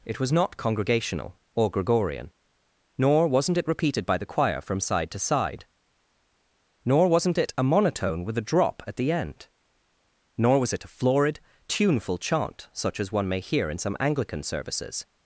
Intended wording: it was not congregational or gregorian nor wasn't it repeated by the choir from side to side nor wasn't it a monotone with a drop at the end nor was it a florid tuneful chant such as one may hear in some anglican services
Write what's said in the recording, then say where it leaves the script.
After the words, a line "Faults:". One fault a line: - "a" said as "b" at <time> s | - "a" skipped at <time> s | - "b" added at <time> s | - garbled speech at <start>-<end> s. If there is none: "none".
it was not congregational or gregorian nor wasn't it repeated by the choir from side to side nor wasn't it a monotone with a drop at the end nor was it a florid tuneful chant such as one may hear in some anglican services
Faults:
none